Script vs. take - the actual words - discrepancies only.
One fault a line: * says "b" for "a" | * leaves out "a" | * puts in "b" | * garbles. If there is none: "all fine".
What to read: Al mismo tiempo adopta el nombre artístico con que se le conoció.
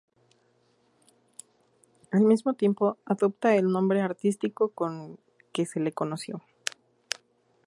all fine